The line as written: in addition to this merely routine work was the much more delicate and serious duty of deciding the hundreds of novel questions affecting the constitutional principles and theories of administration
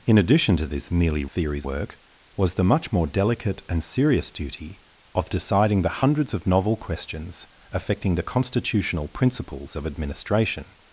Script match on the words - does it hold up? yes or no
no